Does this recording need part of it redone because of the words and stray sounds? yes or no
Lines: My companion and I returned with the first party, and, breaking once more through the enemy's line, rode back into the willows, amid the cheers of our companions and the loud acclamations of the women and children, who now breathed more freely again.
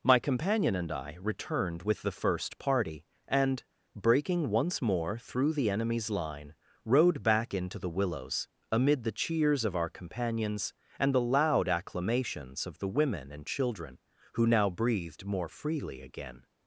no